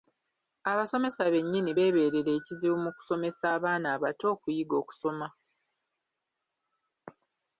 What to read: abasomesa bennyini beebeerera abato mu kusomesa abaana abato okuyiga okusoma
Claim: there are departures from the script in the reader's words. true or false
true